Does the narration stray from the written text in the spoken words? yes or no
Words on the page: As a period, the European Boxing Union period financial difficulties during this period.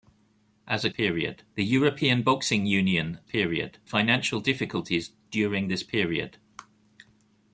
no